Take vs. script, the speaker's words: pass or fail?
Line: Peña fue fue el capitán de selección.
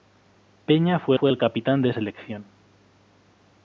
pass